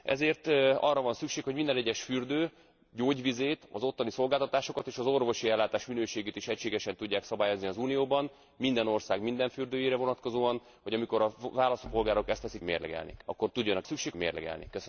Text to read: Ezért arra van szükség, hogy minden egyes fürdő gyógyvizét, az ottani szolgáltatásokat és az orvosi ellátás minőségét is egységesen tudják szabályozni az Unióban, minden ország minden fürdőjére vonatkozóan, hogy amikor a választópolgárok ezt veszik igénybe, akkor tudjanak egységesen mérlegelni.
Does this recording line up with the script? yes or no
no